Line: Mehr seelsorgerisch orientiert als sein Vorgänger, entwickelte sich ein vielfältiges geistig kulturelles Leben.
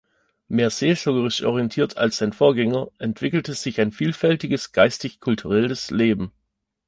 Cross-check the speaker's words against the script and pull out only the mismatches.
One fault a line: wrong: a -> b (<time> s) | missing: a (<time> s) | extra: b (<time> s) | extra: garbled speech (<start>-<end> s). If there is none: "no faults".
no faults